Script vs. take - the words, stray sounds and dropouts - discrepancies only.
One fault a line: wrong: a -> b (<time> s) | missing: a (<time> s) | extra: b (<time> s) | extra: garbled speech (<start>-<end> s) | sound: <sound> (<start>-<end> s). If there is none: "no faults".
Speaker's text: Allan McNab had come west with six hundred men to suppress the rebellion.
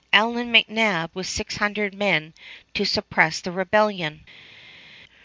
missing: had come west (1.1 s)